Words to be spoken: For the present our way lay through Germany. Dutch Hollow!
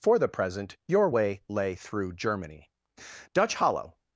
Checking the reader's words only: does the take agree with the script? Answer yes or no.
no